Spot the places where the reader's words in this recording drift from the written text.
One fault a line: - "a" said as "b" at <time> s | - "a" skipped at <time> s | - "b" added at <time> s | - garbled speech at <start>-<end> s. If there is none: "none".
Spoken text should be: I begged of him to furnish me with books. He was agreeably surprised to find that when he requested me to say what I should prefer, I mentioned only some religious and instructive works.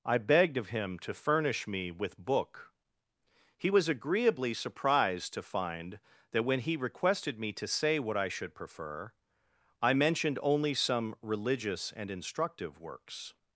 - "books" said as "book" at 2.2 s